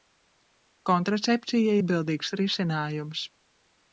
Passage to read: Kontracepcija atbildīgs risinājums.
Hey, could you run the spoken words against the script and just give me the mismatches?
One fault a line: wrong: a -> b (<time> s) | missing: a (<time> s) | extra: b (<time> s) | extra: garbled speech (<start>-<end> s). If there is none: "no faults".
no faults